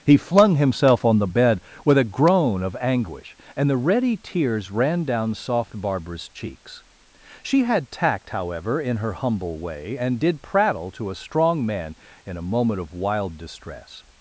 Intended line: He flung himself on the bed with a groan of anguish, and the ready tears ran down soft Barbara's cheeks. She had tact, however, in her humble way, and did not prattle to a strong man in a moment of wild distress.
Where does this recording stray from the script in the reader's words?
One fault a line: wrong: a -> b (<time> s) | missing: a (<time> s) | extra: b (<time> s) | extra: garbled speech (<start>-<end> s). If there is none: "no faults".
missing: not (10.4 s)